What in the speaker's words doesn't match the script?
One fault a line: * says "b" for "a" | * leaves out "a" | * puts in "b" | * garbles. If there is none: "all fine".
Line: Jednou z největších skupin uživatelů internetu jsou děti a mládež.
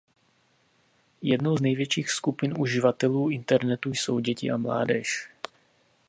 all fine